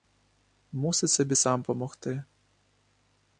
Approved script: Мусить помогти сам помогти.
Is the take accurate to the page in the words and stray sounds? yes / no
no